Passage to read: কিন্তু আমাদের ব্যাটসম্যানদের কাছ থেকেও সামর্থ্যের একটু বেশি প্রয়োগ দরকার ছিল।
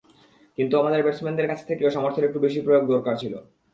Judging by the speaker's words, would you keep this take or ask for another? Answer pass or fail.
pass